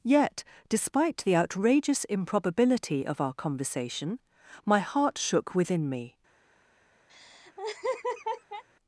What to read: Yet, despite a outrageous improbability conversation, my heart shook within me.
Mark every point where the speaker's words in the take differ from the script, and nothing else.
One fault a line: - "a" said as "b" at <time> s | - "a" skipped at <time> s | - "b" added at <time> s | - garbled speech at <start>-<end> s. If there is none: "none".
- "a" said as "the" at 1.2 s
- "of our" added at 3.0 s